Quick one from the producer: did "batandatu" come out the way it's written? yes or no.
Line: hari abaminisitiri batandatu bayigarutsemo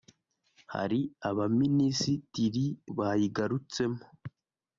no